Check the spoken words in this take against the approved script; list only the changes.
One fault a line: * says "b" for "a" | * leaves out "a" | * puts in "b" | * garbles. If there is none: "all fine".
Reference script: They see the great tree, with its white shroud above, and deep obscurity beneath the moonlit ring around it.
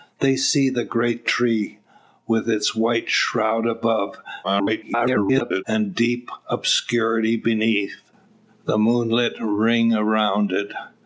* garbles